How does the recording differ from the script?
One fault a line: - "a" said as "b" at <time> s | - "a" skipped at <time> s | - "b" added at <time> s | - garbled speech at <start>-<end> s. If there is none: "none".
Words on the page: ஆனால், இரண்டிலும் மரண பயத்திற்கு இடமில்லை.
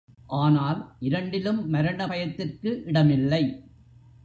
none